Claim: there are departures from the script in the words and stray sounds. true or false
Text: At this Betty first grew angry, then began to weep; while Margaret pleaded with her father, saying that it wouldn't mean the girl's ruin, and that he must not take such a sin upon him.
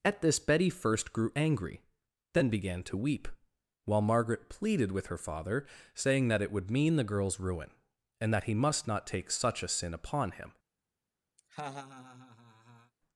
true